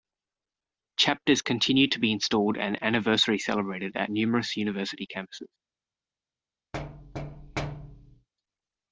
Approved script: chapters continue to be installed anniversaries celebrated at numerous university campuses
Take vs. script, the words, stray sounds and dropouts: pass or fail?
fail